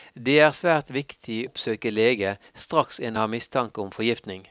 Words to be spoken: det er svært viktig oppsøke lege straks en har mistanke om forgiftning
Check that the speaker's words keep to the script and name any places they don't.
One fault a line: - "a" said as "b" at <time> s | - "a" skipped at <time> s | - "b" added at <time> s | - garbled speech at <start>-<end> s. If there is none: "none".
none